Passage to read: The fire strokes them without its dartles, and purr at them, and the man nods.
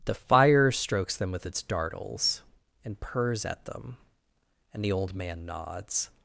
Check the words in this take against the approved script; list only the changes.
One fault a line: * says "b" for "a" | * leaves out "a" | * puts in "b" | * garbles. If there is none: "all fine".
* says "with" for "without"
* says "purrs" for "purr"
* puts in "old"